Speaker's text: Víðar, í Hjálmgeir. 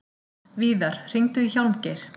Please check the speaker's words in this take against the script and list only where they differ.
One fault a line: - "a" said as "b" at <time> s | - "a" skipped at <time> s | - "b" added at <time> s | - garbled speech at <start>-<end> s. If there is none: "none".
- "hringdu" added at 1.1 s